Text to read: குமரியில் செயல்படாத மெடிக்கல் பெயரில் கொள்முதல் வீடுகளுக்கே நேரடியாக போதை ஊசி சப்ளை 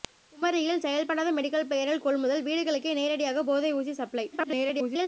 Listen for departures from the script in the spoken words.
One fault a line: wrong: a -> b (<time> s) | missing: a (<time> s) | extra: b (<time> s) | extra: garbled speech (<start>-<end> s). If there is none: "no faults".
extra: garbled speech (4.3-5.1 s)